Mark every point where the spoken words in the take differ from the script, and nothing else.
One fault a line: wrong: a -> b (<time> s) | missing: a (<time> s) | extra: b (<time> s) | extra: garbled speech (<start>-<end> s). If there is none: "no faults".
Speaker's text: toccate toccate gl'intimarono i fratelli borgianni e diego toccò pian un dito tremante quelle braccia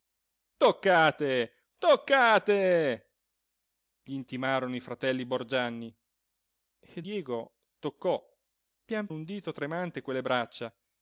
no faults